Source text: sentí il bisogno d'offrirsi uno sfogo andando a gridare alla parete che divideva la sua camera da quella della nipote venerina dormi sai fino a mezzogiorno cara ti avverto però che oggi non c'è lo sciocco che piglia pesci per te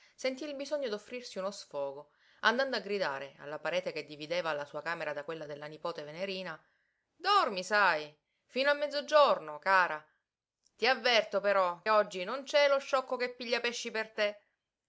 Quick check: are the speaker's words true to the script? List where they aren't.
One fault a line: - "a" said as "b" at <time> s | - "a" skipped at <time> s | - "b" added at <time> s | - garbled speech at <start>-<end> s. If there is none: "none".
- "che" skipped at 11.9 s